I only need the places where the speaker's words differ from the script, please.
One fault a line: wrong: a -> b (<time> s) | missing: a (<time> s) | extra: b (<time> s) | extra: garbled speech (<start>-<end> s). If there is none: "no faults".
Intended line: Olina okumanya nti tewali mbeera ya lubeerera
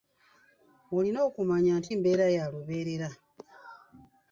missing: tewali (1.9 s)